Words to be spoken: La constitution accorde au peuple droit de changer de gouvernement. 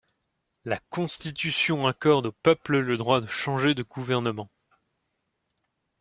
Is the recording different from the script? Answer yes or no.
yes